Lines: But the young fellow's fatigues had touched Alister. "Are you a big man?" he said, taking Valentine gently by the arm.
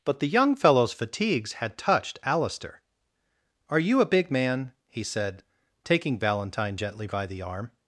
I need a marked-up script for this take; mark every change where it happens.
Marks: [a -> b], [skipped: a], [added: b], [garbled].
But the young fellow's fatigues had touched Alister. "Are you a big man?" he said, taking Valentine gently by the arm.